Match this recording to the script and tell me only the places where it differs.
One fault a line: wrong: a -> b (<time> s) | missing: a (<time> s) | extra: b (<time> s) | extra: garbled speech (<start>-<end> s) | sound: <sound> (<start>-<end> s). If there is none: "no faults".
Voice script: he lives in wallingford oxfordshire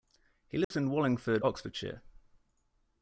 sound: dropout (0.6-0.7 s)